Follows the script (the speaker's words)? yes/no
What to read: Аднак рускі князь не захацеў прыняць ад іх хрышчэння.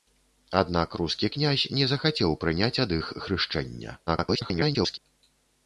no